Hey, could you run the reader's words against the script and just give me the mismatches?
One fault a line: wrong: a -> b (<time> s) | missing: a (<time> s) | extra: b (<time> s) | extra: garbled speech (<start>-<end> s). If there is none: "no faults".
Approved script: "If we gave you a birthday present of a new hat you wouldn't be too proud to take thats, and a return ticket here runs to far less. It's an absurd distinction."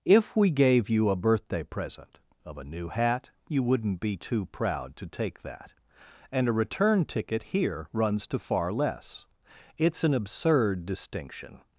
wrong: thats -> that (5.4 s)